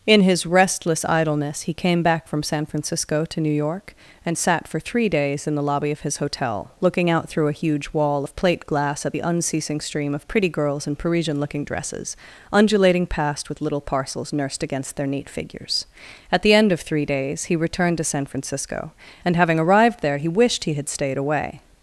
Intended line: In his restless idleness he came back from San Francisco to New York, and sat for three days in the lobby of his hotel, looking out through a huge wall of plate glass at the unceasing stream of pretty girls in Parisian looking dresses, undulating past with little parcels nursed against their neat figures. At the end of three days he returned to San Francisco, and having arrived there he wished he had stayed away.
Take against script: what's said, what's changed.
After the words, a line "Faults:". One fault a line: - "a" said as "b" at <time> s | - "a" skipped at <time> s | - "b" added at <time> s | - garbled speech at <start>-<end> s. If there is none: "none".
In his restless idleness he came back from San Francisco to New York, and sat for three days in the lobby of his hotel, looking out through a huge wall of plate glass at the unceasing stream of pretty girls in Parisian looking dresses, undulating past with little parcels nursed against their neat figures. At the end of three days he returned to San Francisco, and having arrived there he wished he had stayed away.
Faults:
none